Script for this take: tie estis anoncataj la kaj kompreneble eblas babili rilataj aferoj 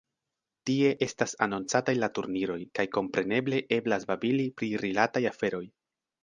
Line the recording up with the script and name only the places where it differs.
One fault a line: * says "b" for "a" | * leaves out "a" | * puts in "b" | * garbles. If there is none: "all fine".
* says "estas" for "estis"
* puts in "turniroj"
* puts in "pri"